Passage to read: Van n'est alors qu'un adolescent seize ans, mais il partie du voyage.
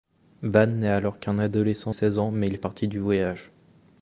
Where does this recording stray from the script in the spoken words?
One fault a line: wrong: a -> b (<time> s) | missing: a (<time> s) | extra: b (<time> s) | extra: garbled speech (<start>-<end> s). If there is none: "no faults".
no faults